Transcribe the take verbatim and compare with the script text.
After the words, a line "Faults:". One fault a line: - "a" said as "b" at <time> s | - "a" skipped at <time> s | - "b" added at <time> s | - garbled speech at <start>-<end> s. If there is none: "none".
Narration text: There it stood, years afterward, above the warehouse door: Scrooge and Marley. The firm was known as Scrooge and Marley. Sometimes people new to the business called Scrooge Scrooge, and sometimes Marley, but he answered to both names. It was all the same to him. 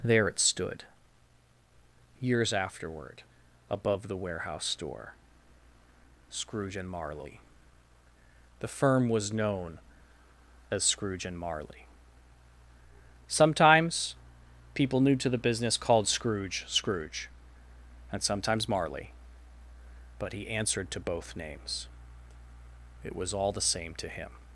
There it stood, years afterward, above the warehouse door: Scrooge and Marley. The firm was known as Scrooge and Marley. Sometimes people new to the business called Scrooge Scrooge, and sometimes Marley, but he answered to both names. It was all the same to him.
Faults:
none